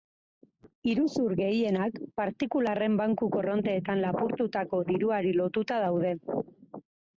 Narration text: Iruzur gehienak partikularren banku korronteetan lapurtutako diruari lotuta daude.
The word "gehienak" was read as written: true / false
true